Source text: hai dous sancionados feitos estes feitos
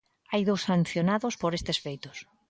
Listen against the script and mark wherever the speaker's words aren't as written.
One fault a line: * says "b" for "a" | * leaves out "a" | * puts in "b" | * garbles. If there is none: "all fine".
* says "por" for "feitos"